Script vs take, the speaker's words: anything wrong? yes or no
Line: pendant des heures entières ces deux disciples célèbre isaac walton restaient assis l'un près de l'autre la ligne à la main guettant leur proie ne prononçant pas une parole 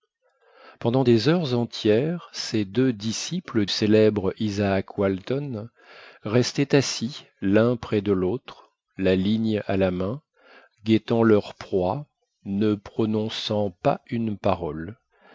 no